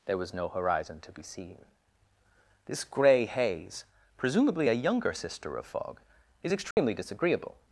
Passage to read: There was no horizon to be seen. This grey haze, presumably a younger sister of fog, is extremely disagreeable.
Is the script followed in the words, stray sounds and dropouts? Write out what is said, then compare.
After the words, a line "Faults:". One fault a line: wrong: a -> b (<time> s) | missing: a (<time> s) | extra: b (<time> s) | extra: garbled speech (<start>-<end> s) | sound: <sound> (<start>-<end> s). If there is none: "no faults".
There was no horizon to be seen. This grey haze, presumably a younger sister of fog, is extremely disagreeable.
Faults:
sound: dropout (6.7-6.8 s)